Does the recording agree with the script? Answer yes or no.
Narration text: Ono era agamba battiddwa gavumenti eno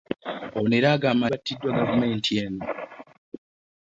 yes